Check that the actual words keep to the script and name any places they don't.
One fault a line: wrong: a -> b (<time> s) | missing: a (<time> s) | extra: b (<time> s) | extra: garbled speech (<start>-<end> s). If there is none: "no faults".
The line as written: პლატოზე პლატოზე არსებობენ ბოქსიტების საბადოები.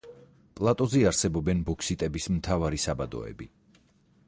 missing: პლატოზე (1.0 s)
extra: მთავარი (2.4 s)